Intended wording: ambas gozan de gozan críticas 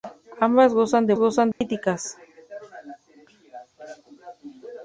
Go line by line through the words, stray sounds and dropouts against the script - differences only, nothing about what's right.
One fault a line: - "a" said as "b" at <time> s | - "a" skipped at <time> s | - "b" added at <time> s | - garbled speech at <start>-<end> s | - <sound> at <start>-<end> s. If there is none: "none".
- dropout at 1.5-1.6 s